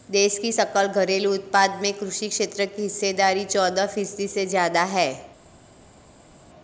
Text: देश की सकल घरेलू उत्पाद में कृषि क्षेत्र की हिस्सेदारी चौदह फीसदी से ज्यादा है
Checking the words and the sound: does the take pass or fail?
pass